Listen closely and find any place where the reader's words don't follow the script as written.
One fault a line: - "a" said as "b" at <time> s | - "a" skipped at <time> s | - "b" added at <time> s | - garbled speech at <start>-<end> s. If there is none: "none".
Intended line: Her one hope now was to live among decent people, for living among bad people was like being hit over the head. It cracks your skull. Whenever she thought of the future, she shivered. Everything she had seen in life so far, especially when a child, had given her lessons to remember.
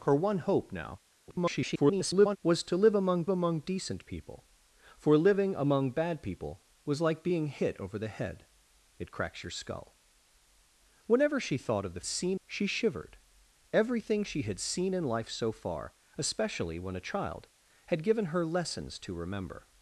- garbled speech at 1.3-2.4 s
- "among" added at 3.3 s
- "future" said as "seen" at 12.0 s